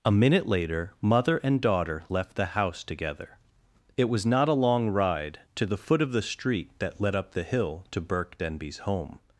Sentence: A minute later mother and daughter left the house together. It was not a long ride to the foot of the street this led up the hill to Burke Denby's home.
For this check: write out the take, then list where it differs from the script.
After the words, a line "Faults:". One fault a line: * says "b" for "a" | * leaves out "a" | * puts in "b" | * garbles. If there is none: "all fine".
A minute later mother and daughter left the house together. It was not a long ride to the foot of the street that led up the hill to Burke Denby's home.
Faults:
* says "that" for "this"